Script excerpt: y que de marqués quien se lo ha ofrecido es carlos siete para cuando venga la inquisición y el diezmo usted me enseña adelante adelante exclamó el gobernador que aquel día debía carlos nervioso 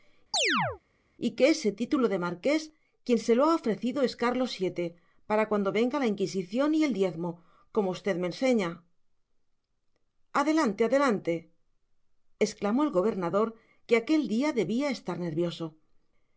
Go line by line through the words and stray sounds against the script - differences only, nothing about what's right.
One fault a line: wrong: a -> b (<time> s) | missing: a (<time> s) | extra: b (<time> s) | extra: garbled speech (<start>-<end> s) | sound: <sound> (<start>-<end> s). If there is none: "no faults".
sound: chirp (0.3-0.8 s)
extra: ese título (1.5 s)
extra: como (7.7 s)
wrong: carlos -> estar (14.9 s)